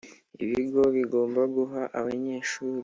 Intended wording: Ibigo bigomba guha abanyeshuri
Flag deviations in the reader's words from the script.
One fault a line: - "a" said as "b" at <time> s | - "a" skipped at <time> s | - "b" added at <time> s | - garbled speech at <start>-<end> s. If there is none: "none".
none